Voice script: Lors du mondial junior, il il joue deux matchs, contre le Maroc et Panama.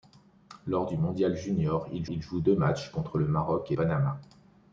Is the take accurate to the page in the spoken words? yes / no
yes